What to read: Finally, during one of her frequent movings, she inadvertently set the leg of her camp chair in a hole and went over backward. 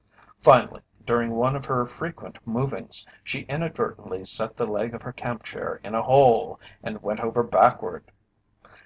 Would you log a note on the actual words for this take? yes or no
no